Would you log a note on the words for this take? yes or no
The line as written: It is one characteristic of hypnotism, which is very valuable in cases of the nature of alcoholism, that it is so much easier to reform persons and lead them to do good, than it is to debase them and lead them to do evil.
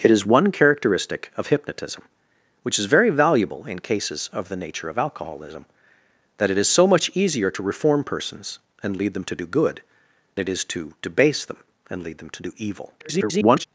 yes